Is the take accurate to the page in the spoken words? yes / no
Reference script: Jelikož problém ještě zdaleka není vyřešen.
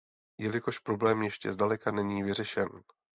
yes